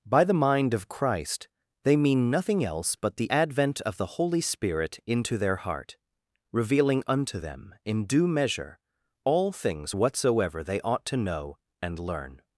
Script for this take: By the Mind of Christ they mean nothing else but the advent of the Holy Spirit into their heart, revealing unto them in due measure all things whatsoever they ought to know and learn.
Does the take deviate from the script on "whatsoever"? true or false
false